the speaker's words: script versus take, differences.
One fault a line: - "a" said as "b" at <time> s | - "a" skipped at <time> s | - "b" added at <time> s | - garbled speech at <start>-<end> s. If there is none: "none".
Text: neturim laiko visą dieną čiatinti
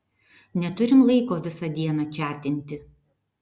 none